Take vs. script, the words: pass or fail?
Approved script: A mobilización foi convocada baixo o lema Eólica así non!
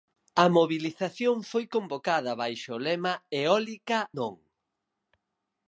fail